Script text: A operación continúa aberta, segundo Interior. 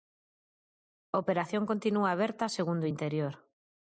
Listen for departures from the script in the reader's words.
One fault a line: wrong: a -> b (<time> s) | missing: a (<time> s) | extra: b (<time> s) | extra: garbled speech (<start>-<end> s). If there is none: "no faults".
no faults